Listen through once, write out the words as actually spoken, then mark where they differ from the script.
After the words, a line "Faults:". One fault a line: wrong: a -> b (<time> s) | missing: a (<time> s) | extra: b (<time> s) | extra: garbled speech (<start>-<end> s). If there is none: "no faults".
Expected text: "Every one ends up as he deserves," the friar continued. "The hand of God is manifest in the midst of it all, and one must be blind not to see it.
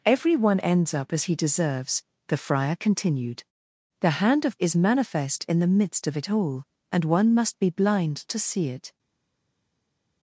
"Every one ends up as he deserves," the friar continued. "The hand of Is manifest in the midst of it all, and one must be blind to see it.
Faults:
missing: God (4.6 s)
missing: not (8.2 s)